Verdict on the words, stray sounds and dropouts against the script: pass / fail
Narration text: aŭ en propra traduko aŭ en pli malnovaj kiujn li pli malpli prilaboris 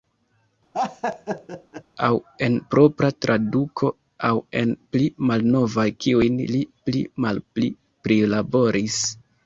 fail